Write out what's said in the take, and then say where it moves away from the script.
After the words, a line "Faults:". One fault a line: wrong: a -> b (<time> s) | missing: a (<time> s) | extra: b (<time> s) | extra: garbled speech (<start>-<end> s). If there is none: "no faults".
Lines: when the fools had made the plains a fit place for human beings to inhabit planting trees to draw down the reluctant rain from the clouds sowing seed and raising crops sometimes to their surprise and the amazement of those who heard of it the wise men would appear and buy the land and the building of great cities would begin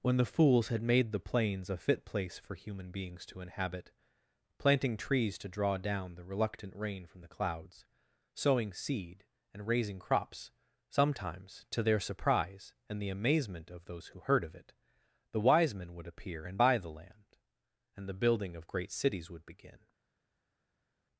when the fools had made the plains a fit place for human beings to inhabit planting trees to draw down the reluctant rain from the clouds sowing seed and raising crops sometimes to their surprise and the amazement of those who heard of it the wise men would appear and buy the land and the building of great cities would begin
Faults:
no faults